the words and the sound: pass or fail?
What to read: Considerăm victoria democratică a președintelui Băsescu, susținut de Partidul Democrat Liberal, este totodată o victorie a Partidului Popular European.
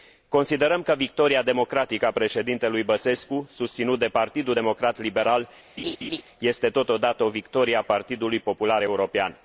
fail